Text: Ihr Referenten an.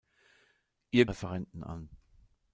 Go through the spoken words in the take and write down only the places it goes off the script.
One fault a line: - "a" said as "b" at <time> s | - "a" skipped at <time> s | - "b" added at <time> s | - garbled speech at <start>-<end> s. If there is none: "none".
none